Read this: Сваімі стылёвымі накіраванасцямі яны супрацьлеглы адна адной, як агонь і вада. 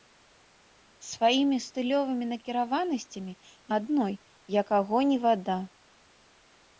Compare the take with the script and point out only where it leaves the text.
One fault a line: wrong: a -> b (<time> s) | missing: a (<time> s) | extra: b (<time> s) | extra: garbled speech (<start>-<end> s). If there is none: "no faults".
missing: яны супрацьлеглы адна (3.3 s)